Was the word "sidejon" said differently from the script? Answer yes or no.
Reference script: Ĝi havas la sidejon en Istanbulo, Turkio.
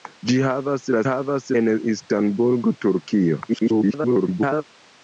yes